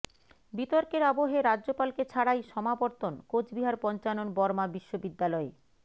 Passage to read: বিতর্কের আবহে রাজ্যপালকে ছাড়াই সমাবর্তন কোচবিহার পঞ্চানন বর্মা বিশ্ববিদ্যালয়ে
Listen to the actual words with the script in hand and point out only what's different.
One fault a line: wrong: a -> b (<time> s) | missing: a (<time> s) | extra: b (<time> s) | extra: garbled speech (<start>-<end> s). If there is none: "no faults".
no faults